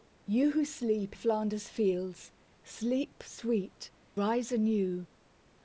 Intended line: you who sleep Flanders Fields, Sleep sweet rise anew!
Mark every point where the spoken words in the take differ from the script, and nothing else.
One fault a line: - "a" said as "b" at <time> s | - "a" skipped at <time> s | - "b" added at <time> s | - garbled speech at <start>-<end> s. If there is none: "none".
none